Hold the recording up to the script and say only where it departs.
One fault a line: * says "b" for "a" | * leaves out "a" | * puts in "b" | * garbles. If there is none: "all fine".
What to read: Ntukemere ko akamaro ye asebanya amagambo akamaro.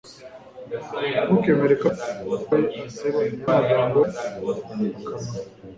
all fine